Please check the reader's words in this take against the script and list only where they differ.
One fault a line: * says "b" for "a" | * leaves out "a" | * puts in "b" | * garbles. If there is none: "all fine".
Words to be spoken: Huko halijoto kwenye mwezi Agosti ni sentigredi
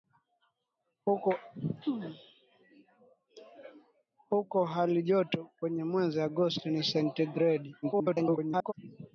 * garbles